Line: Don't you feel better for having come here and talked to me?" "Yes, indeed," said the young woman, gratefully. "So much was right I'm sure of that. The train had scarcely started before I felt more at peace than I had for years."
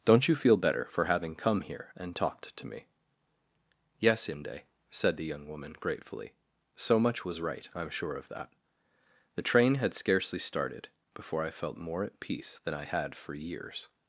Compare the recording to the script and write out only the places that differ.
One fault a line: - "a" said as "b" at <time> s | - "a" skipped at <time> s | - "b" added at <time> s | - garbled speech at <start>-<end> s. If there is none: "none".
- "indeed" said as "inde" at 4.3 s